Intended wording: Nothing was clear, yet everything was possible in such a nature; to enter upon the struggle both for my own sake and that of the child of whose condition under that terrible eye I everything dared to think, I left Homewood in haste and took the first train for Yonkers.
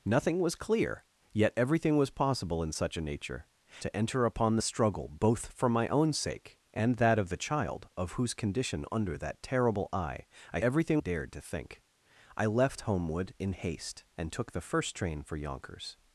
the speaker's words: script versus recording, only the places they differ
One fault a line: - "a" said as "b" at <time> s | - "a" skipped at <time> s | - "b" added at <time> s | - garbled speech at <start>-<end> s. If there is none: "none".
none